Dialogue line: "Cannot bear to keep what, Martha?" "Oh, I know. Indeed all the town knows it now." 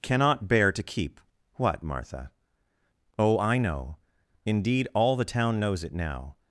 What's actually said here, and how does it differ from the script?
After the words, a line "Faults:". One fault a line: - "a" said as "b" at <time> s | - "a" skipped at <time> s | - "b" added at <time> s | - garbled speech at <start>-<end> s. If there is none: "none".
"Cannot bear to keep what, Martha?" "Oh, I know. Indeed all the town knows it now."
Faults:
none